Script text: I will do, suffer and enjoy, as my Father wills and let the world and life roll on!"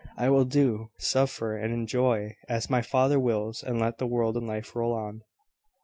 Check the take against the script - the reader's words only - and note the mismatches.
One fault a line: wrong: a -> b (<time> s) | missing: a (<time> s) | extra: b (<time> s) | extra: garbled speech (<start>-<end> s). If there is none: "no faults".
no faults